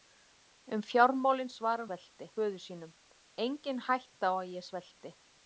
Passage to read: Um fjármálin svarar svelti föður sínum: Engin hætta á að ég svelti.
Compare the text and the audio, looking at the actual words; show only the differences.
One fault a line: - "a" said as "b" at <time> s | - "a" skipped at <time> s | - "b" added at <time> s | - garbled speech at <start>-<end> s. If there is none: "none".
none